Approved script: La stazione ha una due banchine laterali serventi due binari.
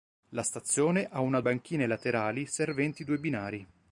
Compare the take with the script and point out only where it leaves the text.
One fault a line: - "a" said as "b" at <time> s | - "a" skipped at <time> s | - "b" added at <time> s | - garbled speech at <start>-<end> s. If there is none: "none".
- "due" skipped at 1.4 s